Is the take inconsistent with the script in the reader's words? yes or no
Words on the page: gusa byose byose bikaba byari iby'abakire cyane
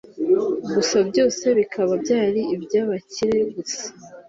yes